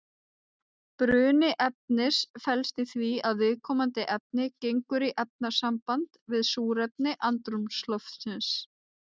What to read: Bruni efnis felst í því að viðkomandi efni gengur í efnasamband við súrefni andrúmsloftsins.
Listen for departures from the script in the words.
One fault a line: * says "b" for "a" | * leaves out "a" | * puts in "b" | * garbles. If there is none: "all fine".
all fine